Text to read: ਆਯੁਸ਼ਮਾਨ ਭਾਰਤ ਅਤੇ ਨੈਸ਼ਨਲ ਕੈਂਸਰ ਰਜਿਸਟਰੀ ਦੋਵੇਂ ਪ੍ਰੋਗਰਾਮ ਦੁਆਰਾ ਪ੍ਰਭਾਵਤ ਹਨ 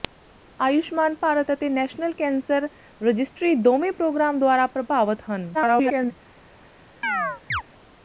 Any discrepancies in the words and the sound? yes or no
yes